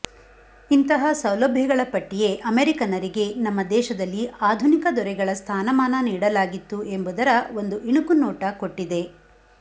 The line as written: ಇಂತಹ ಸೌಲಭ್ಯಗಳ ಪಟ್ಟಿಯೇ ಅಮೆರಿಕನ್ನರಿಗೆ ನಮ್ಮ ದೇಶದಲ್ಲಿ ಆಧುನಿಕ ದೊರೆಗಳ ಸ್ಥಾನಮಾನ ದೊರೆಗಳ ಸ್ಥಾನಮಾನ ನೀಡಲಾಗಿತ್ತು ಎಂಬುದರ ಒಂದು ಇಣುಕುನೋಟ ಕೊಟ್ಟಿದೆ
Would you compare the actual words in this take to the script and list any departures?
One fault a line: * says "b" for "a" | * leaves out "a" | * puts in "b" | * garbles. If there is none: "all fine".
* leaves out "ದೊರೆಗಳ ಸ್ಥಾನಮಾನ"